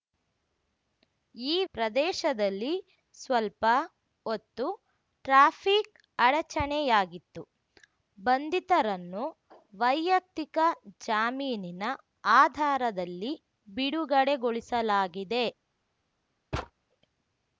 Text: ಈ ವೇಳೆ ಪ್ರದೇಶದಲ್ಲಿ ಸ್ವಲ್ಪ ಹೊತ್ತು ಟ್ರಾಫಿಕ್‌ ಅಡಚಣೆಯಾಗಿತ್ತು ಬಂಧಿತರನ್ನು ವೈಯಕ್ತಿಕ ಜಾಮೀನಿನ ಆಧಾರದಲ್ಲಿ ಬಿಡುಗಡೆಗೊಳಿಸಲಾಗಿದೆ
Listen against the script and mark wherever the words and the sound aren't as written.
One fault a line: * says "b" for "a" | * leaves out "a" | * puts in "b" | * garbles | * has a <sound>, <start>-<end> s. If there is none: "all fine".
* leaves out "ವೇಳೆ"
* has a thud, 16.5-16.7 s